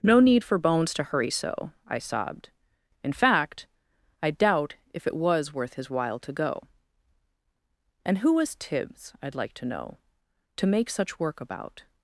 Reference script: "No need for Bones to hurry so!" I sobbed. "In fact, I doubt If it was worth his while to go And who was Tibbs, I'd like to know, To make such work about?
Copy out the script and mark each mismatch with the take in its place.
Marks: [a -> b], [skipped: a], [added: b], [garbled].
"No need for Bones to hurry so!" I sobbed. "In fact, I doubt If it was worth his while to go And who was Tibbs, I'd like to know, To make such work about?